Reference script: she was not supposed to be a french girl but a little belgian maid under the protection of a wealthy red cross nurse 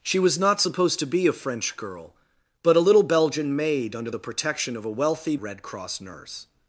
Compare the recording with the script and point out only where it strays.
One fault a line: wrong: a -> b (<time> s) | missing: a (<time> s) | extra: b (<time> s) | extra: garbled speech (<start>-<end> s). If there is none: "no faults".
no faults